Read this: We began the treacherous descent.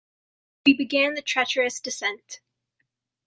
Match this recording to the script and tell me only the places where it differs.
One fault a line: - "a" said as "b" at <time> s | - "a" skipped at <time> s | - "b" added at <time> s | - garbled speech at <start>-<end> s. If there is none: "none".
none